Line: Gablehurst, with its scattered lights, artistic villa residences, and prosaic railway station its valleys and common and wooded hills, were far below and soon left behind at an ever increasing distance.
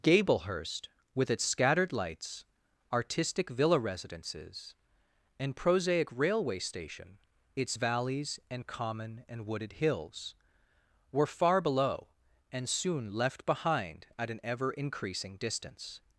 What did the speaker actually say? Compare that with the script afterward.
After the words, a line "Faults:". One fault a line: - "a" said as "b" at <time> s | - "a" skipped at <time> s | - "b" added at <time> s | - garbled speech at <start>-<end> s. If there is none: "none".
Gablehurst, with its scattered lights, artistic villa residences, and prosaic railway station its valleys and common and wooded hills, were far below and soon left behind at an ever increasing distance.
Faults:
none